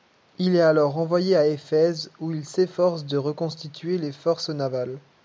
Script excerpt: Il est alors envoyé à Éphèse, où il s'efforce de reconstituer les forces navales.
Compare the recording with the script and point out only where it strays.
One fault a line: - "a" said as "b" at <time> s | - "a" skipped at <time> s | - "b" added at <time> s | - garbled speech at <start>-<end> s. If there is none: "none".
none